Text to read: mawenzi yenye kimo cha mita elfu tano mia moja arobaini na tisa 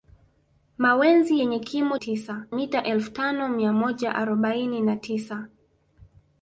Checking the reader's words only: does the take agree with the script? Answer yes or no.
no